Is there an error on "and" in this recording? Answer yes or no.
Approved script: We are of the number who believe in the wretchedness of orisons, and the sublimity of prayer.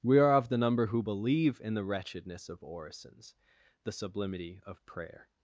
yes